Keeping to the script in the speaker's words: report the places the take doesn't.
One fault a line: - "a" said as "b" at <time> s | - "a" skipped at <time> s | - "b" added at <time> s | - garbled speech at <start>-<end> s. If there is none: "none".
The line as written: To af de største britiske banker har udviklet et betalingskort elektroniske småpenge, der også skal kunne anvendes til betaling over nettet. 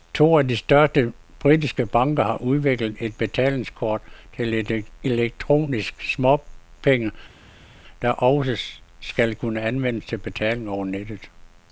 - "til" added at 4.4 s